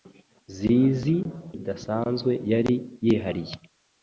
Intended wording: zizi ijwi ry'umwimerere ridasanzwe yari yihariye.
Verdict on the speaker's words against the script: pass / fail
fail